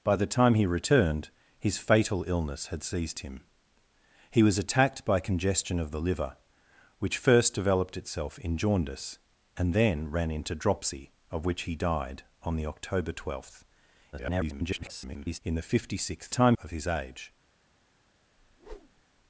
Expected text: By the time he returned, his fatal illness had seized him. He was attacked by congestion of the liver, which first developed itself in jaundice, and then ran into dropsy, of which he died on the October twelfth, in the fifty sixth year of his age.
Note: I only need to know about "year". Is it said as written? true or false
false